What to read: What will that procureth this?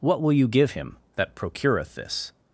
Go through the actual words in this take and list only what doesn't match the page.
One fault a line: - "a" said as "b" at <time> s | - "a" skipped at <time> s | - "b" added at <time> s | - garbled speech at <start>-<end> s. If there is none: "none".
- "you give him" added at 0.3 s